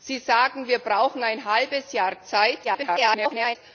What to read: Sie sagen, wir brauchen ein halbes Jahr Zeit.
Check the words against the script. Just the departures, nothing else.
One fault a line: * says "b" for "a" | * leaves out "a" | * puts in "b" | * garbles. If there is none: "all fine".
* garbles